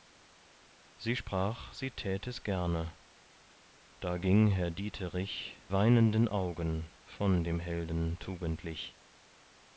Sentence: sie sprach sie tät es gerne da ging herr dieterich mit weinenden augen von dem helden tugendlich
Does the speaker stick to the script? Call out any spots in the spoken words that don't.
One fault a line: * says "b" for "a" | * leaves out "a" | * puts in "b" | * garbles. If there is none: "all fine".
* leaves out "mit"